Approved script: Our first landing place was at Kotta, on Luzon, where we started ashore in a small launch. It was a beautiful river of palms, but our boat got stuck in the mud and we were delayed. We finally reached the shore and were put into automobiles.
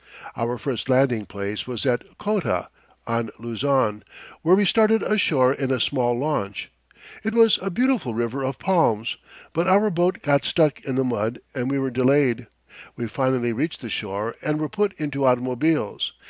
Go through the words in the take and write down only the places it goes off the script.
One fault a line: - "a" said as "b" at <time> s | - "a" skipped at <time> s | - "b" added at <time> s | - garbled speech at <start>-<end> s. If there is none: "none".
none